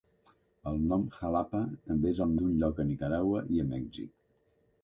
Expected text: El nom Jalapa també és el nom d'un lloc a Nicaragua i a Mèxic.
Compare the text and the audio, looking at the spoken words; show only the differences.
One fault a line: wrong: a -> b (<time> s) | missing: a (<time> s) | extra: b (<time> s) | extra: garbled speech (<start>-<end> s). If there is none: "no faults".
missing: nom (2.3 s)